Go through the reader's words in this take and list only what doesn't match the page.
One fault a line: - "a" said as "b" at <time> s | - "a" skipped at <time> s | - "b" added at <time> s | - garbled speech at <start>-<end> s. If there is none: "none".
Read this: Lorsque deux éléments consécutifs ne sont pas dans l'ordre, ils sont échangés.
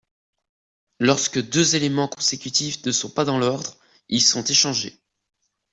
none